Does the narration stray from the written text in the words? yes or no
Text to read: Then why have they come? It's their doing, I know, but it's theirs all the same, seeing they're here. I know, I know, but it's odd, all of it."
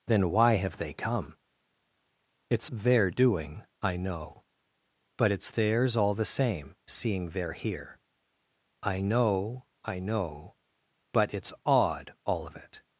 no